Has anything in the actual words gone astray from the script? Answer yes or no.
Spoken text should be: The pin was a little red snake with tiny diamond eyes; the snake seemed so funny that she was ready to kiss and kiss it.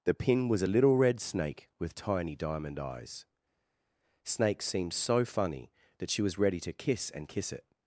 yes